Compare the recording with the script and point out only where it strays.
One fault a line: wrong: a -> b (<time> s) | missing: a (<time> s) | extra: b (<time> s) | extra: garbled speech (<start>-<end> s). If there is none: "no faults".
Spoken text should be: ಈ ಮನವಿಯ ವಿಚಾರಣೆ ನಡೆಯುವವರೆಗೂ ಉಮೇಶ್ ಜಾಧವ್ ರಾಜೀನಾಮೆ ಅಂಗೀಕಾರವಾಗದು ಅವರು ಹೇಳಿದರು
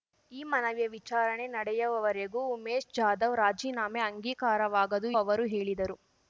no faults